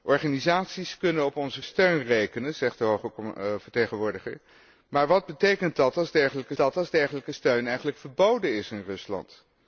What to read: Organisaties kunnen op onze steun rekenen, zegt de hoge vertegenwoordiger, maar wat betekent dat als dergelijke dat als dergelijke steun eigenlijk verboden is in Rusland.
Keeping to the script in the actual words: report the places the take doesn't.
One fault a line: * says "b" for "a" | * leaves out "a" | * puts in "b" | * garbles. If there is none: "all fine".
all fine